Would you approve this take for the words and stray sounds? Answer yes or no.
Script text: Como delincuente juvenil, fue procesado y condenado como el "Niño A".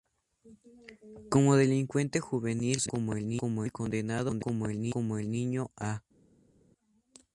no